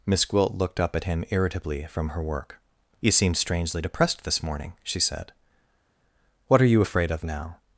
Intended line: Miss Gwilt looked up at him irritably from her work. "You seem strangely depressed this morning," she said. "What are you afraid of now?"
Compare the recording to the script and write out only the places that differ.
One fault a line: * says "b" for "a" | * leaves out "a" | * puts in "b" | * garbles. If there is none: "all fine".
all fine